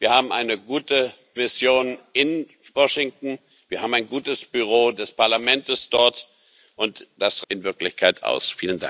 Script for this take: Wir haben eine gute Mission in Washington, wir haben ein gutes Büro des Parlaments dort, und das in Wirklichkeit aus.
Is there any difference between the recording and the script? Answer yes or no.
no